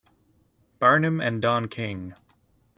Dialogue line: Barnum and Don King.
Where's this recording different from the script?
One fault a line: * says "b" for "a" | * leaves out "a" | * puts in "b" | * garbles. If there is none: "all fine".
all fine